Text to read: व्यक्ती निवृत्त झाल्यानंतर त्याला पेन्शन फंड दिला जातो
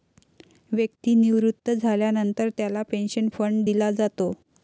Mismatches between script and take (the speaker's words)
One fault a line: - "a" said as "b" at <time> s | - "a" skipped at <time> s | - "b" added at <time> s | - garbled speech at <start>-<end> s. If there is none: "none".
none